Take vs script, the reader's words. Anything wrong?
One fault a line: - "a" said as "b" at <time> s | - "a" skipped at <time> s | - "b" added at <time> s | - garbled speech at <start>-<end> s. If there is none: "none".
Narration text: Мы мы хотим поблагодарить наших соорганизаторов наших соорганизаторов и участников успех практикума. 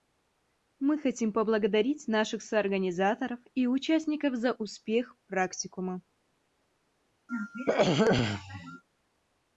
- "мы" skipped at 1.0 s
- "наших соорганизаторов" skipped at 3.4 s
- "за" added at 4.3 s